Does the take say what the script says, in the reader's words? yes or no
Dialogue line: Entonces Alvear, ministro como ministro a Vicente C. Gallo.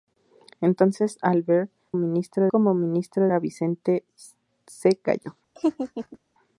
yes